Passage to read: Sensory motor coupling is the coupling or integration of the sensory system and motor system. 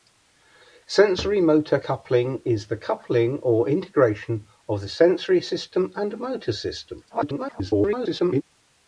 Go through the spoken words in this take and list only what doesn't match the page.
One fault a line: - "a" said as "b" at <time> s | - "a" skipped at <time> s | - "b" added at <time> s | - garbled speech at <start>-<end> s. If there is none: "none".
- garbled speech at 7.1-8.4 s